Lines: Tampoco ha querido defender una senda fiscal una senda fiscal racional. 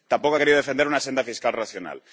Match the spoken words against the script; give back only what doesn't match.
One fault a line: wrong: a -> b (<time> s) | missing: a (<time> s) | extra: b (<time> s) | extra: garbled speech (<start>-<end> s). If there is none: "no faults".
missing: una senda fiscal (1.5 s)